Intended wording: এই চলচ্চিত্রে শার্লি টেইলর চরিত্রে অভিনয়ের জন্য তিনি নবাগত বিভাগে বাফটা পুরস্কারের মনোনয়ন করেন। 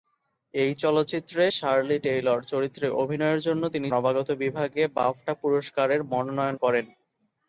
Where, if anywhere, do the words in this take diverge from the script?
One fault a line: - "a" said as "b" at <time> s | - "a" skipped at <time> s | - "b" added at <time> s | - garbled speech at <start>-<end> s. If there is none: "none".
none